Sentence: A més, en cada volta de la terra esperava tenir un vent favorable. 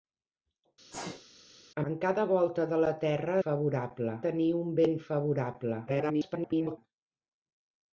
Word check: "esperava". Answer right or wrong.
wrong